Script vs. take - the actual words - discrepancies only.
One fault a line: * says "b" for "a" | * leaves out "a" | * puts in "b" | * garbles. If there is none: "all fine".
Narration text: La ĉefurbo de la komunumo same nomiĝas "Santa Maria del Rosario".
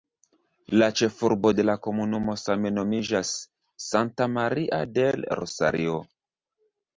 all fine